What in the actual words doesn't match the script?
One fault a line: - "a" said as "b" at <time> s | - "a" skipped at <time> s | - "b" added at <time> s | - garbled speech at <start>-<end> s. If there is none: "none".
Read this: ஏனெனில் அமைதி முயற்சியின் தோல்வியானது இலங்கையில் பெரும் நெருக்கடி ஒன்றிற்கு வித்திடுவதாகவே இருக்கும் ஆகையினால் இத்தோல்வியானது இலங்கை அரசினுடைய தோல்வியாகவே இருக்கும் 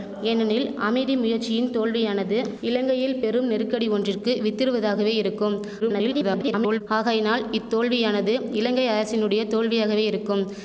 - garbled speech at 5.8-6.8 s